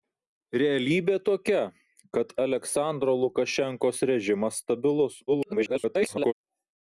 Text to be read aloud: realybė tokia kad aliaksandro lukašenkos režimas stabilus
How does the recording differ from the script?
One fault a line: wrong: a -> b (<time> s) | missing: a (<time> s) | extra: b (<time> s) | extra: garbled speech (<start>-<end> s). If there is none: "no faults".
extra: garbled speech (5.3-6.3 s)